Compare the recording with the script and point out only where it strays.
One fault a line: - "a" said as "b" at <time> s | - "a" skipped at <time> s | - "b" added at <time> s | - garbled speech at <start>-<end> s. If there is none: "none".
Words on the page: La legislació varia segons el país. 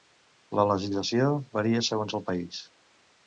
none